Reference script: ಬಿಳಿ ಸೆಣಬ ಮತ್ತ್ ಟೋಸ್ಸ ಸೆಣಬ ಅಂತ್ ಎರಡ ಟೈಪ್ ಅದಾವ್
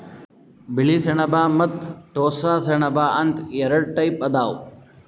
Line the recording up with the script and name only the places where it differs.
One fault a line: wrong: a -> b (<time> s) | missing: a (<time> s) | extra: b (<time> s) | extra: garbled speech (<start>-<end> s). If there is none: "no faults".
no faults